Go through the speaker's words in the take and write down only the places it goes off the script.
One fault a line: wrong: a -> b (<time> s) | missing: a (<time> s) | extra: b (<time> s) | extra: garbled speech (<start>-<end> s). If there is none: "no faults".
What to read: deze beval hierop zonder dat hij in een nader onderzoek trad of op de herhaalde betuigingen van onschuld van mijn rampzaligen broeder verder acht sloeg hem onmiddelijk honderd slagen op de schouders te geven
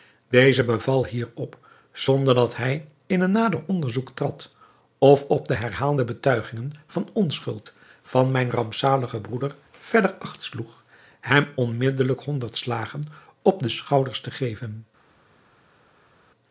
no faults